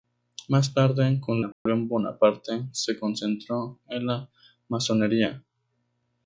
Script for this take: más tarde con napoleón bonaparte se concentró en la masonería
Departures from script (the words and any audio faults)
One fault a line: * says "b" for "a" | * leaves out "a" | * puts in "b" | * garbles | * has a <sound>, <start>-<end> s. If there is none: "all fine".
* has a dropout, 1.5-1.7 s